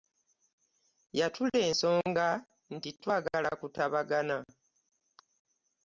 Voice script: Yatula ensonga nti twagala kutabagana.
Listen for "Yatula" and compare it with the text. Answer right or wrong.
right